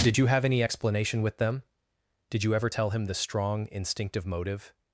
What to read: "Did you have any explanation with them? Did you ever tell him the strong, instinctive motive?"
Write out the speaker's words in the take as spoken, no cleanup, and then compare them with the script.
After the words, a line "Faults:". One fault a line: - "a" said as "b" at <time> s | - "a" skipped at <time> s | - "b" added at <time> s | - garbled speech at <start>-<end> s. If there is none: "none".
"Did you have any explanation with them? Did you ever tell him the strong, instinctive motive?"
Faults:
none